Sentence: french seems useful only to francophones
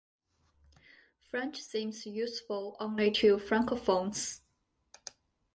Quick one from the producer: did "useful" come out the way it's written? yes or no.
yes